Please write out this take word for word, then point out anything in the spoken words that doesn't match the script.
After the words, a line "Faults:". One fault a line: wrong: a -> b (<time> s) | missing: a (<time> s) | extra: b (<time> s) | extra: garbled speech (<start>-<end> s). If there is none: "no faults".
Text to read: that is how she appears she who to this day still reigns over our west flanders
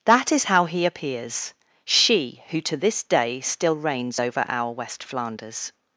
that is how he appears she who to this day still reigns over our west flanders
Faults:
wrong: she -> he (0.7 s)